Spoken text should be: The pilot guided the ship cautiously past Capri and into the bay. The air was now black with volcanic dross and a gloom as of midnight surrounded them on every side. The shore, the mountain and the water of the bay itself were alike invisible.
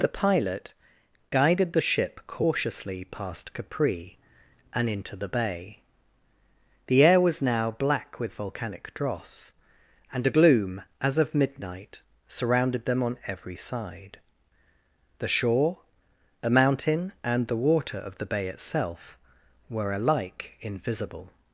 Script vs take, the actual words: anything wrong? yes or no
yes